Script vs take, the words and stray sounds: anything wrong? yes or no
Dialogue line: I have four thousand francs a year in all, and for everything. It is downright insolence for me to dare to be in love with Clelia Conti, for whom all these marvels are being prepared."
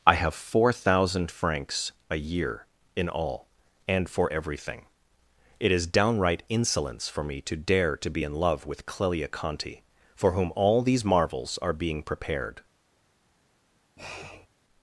yes